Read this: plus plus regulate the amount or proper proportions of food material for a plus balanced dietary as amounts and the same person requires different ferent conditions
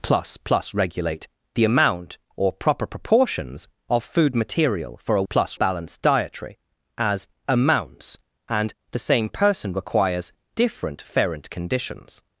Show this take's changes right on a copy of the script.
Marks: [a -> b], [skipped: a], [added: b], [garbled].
plus plus regulate the amount or proper proportions of food material for a plus balanced dietary as amounts and the same person requires different ferent conditions